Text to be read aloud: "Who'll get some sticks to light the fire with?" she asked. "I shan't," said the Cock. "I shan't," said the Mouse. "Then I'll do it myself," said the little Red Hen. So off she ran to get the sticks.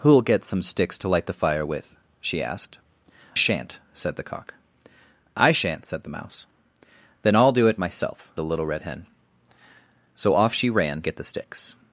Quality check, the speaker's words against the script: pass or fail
fail